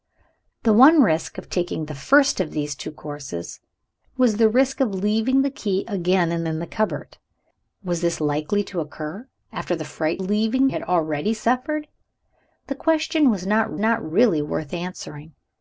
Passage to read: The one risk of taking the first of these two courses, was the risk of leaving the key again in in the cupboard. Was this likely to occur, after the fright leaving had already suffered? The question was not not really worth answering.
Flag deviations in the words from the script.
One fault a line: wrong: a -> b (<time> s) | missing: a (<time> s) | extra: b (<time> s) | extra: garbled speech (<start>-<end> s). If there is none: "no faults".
no faults